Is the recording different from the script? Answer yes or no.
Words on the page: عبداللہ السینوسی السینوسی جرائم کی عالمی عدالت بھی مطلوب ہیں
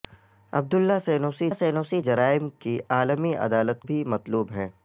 no